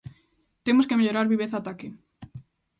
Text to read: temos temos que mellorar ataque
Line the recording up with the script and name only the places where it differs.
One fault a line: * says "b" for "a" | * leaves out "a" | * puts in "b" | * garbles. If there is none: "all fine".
* leaves out "temos"
* puts in "viveza"